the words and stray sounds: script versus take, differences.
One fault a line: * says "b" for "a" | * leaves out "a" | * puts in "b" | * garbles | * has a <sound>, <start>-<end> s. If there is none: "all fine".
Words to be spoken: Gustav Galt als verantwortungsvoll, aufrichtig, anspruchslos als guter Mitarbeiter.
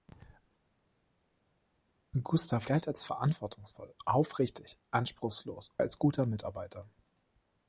all fine